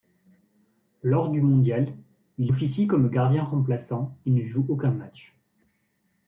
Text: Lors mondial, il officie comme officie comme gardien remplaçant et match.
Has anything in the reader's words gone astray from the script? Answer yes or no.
yes